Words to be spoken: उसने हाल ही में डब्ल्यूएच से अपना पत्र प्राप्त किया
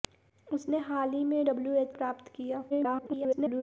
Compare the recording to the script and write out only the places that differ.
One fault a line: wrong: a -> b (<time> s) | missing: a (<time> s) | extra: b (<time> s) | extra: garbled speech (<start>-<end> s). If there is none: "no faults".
missing: से अपना पत्र (1.9 s)
extra: garbled speech (2.7-3.6 s)